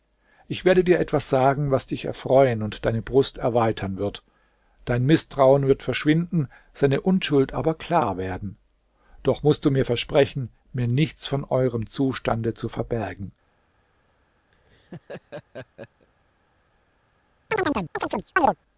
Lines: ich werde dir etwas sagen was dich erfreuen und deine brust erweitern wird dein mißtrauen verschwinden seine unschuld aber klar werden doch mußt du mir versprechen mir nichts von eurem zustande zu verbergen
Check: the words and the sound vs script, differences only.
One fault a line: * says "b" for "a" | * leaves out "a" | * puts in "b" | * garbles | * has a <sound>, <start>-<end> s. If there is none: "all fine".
* puts in "wird"
* has a laugh, 14.5-16.1 s
* has a chirp, 17.5-18.6 s